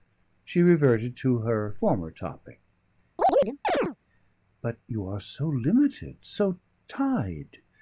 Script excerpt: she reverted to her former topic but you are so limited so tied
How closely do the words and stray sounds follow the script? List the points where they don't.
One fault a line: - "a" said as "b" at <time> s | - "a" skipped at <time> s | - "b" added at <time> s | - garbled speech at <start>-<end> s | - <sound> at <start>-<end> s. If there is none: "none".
- chirp at 3.2-4.0 s